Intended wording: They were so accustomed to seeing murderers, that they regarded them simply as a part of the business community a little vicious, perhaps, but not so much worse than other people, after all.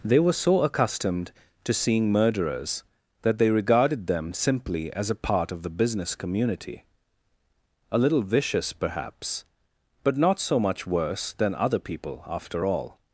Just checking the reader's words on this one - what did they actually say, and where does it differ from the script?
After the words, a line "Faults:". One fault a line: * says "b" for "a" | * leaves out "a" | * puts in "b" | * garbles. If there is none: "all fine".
They were so accustomed to seeing murderers, that they regarded them simply as a part of the business community a little vicious, perhaps, but not so much worse than other people, after all.
Faults:
all fine